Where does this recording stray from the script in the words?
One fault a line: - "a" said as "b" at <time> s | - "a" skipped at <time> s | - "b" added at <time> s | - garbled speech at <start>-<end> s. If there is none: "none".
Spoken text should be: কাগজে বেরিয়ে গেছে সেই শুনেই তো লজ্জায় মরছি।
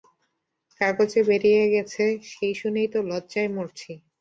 none